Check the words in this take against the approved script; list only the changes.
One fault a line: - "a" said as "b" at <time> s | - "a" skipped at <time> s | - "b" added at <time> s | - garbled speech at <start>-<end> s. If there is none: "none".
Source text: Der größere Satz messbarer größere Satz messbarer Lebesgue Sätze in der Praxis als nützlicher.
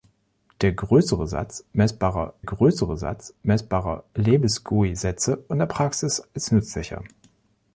none